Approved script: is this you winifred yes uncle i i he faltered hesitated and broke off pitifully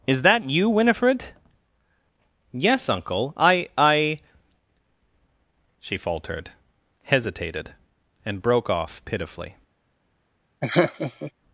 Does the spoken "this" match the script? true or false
false